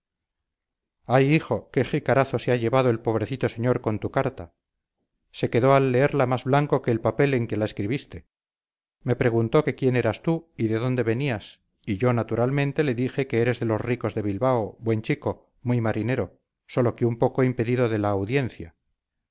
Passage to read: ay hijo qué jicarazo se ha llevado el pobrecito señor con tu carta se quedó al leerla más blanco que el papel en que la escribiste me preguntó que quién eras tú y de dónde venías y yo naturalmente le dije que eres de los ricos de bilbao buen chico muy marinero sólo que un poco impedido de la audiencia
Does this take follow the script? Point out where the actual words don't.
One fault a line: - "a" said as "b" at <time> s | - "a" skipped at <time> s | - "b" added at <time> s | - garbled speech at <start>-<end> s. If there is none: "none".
none